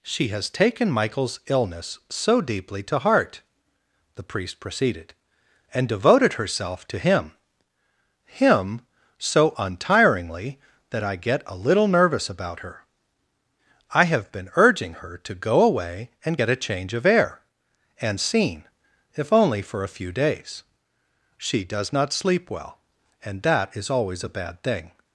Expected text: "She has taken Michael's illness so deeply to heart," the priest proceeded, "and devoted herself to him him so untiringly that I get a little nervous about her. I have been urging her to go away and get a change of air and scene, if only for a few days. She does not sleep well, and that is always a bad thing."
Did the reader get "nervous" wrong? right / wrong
right